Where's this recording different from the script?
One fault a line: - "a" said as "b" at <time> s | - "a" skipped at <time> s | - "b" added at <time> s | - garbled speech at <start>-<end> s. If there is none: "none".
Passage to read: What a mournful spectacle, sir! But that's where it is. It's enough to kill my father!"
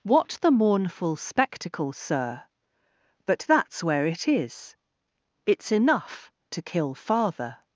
- "a" said as "the" at 0.4 s
- "my" skipped at 6.9 s